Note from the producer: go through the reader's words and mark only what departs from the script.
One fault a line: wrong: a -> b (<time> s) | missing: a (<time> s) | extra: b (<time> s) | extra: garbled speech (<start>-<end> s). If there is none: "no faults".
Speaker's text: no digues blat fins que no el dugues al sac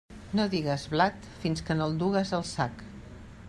no faults